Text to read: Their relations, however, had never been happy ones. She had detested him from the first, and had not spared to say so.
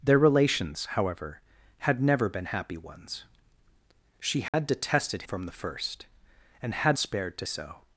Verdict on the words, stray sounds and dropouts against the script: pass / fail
fail